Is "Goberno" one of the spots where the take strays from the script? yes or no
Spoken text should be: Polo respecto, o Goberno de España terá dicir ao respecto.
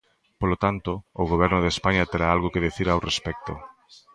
no